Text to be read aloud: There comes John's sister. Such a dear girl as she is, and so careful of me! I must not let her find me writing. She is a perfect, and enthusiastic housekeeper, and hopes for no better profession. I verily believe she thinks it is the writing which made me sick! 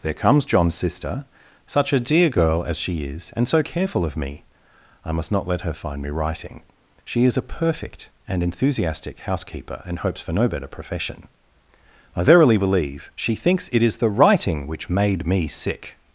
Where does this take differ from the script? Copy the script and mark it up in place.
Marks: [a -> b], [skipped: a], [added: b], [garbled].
There comes John's sister. Such a dear girl as she is, and so careful of me! I must not let her find me writing. She is a perfect, and enthusiastic housekeeper, and hopes for no better profession. I verily believe she thinks it is the writing which made me sick!